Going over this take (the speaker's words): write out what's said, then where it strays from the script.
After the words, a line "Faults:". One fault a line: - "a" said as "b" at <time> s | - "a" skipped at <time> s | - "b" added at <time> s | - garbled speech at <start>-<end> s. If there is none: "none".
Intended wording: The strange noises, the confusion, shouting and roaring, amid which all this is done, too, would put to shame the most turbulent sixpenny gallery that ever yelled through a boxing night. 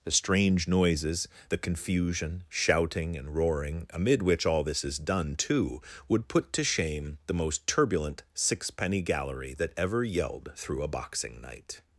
The strange noises, the confusion, shouting and roaring, amid which all this is done, too, would put to shame the most turbulent sixpenny gallery that ever yelled through a boxing night.
Faults:
none